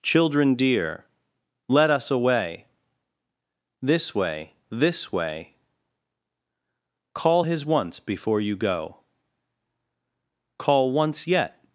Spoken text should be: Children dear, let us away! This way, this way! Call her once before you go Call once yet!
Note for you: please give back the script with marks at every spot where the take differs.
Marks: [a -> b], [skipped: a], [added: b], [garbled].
Children dear, let us away! This way, this way! Call [her -> his] once before you go Call once yet!